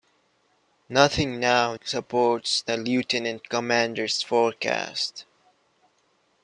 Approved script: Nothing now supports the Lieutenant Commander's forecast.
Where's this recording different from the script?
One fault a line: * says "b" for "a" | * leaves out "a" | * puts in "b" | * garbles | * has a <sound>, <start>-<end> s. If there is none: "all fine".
all fine